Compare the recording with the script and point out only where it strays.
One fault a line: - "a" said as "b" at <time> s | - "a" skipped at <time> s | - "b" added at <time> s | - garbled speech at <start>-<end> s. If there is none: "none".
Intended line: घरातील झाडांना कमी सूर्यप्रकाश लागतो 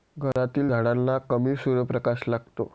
none